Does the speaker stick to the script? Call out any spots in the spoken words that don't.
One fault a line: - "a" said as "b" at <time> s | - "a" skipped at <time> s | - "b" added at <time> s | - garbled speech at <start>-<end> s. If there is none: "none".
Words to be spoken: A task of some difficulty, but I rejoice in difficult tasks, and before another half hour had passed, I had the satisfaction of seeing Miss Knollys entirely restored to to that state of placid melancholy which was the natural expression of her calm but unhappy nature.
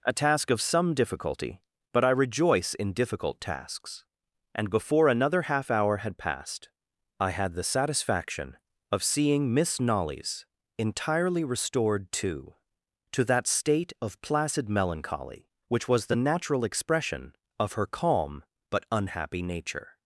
none